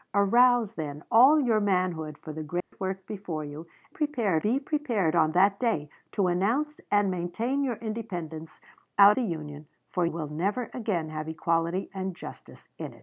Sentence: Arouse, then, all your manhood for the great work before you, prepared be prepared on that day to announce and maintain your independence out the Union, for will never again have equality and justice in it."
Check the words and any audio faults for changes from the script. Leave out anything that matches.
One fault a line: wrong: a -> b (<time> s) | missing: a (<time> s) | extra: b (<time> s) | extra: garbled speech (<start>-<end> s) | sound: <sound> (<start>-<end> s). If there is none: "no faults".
sound: dropout (2.6-2.7 s)